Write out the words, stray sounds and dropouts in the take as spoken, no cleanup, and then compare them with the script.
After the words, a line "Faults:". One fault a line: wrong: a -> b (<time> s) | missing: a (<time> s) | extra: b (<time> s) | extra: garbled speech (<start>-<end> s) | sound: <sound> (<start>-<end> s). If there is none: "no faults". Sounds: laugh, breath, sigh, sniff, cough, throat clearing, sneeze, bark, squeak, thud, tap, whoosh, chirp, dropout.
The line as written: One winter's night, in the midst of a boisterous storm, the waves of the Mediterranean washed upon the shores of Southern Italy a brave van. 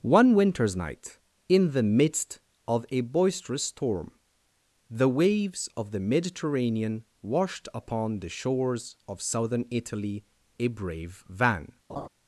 One winter's night, in the midst of a boisterous storm, the waves of the Mediterranean washed upon the shores of Southern Italy a brave van.
Faults:
sound: laugh (11.9-12.1 s)